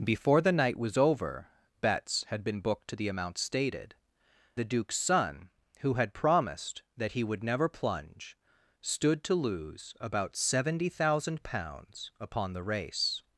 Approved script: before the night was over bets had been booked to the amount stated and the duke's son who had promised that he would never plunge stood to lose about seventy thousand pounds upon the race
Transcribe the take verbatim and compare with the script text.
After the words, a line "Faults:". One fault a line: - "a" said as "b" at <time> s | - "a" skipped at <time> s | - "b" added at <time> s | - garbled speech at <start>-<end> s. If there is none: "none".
before the night was over bets had been booked to the amount stated the duke's son who had promised that he would never plunge stood to lose about seventy thousand pounds upon the race
Faults:
- "and" skipped at 4.0 s